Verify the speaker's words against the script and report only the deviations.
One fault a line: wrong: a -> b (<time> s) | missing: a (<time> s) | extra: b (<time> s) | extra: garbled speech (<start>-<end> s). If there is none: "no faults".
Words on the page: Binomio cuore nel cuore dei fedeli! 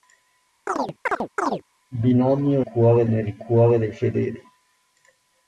no faults